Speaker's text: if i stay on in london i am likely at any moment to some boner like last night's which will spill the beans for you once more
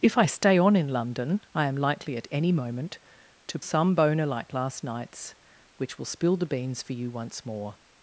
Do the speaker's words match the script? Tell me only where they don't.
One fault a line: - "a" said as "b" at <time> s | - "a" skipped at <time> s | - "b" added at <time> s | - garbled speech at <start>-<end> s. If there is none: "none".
none